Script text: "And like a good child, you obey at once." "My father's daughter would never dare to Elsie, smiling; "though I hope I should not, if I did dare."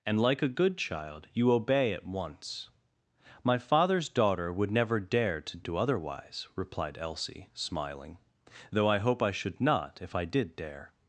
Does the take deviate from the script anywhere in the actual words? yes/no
yes